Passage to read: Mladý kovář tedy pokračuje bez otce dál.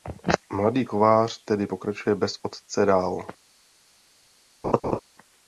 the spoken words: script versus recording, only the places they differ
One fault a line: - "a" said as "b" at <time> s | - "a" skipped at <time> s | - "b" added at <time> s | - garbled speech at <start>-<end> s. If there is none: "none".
none